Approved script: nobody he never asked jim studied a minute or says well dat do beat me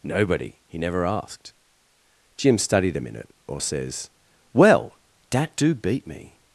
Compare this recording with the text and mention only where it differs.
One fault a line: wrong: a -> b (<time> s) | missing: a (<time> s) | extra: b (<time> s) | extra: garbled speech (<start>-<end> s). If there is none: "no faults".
no faults